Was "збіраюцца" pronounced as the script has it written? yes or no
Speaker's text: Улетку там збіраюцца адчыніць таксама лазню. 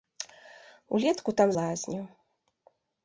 no